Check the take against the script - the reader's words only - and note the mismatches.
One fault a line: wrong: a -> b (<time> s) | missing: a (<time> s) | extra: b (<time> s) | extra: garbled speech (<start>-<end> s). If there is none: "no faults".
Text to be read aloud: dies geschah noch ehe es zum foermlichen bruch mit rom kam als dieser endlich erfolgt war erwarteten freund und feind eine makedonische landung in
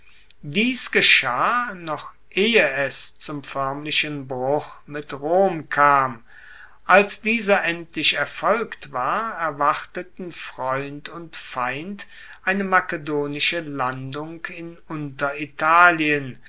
no faults